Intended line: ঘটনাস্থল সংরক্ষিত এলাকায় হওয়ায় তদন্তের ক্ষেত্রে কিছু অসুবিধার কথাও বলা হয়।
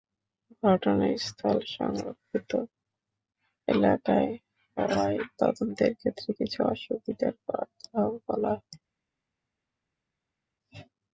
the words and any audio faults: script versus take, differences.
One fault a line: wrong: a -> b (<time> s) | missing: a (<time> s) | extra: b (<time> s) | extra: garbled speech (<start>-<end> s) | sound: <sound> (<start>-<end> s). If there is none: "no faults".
no faults